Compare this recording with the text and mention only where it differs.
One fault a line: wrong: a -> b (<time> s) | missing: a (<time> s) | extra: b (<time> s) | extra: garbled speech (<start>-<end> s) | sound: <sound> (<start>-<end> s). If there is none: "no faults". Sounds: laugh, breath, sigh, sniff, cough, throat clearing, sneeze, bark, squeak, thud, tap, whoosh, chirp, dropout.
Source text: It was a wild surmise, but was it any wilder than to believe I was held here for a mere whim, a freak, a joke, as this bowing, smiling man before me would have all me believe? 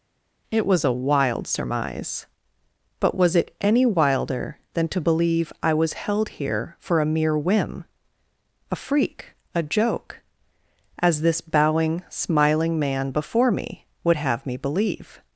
missing: all (14.5 s)